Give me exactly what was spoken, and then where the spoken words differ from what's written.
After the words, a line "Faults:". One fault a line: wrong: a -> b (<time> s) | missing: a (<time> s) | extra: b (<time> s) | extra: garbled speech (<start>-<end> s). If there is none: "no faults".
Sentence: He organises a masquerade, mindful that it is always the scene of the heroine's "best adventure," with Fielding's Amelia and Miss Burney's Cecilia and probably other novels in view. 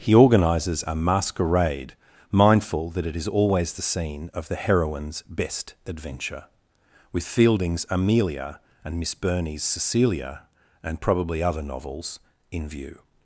He organises a masquerade, mindful that it is always the scene of the heroine's "best adventure," with Fielding's Amelia and Miss Burney's Cecilia and probably other novels in view.
Faults:
no faults